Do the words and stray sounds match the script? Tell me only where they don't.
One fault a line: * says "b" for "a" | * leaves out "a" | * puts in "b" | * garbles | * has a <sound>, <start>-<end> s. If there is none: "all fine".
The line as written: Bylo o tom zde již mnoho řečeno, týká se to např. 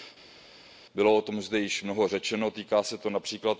all fine